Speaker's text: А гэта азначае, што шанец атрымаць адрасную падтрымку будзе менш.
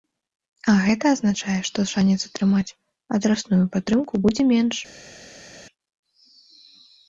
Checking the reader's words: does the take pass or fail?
pass